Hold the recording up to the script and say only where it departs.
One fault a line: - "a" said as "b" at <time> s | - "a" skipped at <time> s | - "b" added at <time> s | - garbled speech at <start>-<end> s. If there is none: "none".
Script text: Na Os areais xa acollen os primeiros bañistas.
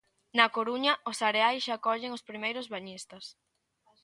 - "Coruña" added at 0.6 s